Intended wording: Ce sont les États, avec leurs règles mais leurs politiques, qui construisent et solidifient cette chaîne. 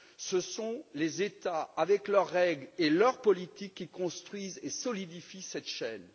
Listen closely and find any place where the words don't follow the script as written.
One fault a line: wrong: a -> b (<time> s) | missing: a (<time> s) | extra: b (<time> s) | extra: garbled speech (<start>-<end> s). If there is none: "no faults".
wrong: mais -> et (2.8 s)